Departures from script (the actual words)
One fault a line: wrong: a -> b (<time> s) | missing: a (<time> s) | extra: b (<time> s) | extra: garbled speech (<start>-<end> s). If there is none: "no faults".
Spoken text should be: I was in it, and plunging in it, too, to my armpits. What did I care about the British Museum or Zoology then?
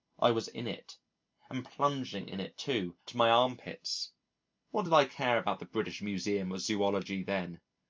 no faults